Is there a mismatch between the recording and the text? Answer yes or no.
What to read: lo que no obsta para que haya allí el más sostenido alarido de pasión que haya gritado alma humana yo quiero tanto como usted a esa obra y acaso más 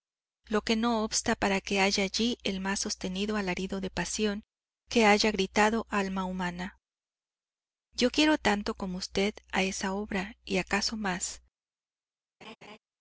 no